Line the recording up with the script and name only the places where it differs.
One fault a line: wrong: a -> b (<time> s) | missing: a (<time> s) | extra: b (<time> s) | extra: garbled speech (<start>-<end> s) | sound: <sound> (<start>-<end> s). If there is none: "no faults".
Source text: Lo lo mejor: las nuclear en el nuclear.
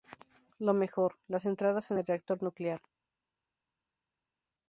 missing: lo (0.7 s)
wrong: nuclear -> entradas (1.4 s)
extra: reactor (2.1 s)